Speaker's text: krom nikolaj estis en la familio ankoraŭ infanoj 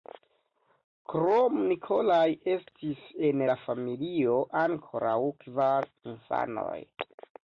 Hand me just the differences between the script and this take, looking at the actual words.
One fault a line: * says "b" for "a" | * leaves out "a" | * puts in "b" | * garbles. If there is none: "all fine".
* puts in "kvar"